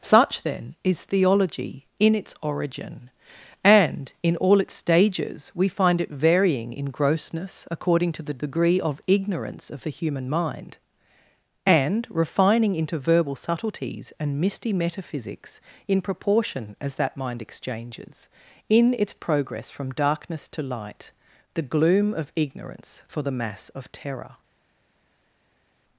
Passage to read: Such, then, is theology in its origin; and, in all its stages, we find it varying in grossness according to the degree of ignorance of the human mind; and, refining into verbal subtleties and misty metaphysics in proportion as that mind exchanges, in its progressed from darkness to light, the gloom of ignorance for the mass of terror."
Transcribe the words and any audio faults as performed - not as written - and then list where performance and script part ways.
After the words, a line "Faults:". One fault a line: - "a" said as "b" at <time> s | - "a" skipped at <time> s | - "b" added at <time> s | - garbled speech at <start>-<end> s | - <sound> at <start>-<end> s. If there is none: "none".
Such, then, is theology in its origin; and, in all its stages, we find it varying in grossness according to the degree of ignorance of the human mind; and, refining into verbal subtleties and misty metaphysics in proportion as that mind exchanges, in its progress from darkness to light, the gloom of ignorance for the mass of terror."
Faults:
- "progressed" said as "progress" at 19.1 s